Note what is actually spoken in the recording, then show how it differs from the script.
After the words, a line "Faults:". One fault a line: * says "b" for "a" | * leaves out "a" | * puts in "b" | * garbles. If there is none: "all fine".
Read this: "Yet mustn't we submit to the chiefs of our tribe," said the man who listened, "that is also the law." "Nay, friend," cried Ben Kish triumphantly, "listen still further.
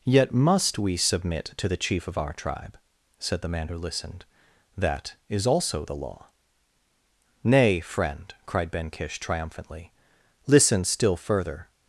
"Yet must we submit to the chief of our tribe," said the man who listened, "that is also the law." "Nay, friend," cried Ben Kish triumphantly, "listen still further.
Faults:
* says "must" for "mustn't"
* says "chief" for "chiefs"